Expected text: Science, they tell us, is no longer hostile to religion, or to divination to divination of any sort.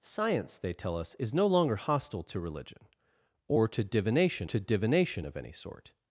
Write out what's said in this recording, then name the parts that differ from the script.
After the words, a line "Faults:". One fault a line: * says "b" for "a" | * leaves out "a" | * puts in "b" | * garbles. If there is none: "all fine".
Science, they tell us, is no longer hostile to religion, or to divination to divination of any sort.
Faults:
all fine